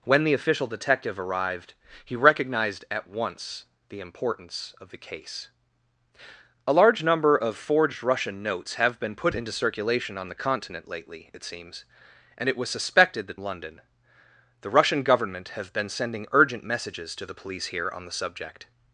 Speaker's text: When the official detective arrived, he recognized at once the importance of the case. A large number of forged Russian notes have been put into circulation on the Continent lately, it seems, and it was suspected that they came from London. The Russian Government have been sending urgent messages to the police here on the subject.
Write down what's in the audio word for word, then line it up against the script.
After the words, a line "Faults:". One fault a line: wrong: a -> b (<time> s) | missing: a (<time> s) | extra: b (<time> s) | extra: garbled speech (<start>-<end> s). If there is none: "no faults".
When the official detective arrived, he recognized at once the importance of the case. A large number of forged Russian notes have been put into circulation on the Continent lately, it seems, and it was suspected that London. The Russian Government have been sending urgent messages to the police here on the subject.
Faults:
missing: they came from (13.4 s)